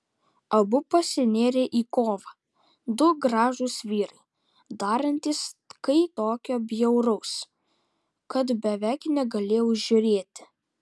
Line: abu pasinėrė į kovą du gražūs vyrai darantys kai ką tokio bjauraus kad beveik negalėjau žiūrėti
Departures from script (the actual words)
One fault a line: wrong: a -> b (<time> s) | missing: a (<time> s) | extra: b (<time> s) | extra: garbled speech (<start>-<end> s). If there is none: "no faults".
missing: ką (6.0 s)